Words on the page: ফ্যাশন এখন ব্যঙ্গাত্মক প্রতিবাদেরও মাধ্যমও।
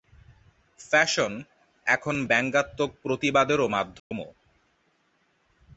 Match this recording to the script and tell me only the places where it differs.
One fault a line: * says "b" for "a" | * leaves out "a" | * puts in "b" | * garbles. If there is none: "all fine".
all fine